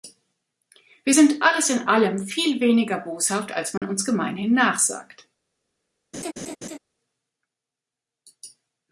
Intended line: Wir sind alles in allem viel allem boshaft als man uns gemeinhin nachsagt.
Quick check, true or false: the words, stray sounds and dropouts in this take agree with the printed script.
false